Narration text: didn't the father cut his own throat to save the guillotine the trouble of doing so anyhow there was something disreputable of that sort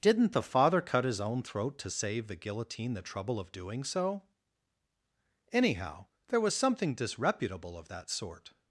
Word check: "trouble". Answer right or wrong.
right